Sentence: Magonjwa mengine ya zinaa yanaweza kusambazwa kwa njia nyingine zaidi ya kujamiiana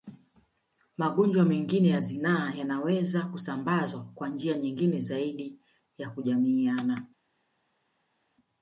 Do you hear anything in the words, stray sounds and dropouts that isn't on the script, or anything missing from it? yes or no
no